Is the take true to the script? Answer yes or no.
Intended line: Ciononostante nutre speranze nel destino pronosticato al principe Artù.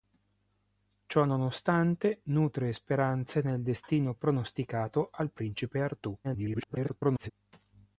no